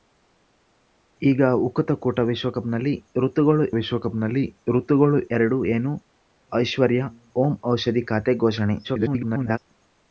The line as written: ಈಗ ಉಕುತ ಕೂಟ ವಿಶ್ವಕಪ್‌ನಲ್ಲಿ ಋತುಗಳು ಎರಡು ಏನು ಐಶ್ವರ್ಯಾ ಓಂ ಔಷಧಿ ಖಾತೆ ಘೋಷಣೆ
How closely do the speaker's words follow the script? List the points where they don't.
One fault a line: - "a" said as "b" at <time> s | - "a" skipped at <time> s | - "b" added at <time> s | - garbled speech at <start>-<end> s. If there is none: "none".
- "ವಿಶ್ವಕಪ್‌ನಲ್ಲಿ ಋತುಗಳು" added at 3.8 s
- garbled speech at 8.8-9.6 s